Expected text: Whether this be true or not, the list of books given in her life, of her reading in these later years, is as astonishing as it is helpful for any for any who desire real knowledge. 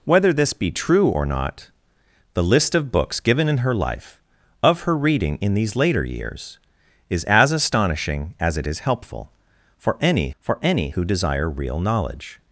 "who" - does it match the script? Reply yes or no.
yes